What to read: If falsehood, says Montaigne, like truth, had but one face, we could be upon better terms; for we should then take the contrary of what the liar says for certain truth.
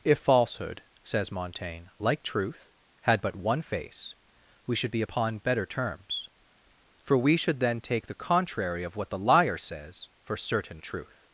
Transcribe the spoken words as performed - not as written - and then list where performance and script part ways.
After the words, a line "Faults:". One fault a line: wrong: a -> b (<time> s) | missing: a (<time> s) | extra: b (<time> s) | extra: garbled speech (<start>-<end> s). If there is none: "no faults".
If falsehood, says Montaigne, like truth, had but one face, we should be upon better terms; for we should then take the contrary of what the liar says for certain truth.
Faults:
wrong: could -> should (4.8 s)